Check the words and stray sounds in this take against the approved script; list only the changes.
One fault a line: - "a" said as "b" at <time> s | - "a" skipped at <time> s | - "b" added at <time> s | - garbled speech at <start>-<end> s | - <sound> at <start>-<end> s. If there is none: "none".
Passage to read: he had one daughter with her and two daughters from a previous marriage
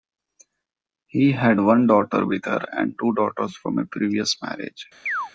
- chirp at 5.1-5.3 s